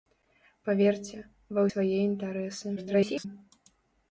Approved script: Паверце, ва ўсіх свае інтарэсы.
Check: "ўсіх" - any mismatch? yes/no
yes